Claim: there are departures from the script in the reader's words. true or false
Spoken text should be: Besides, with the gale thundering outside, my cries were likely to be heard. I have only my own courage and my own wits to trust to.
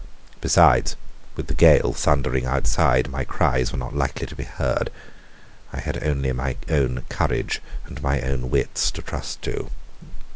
true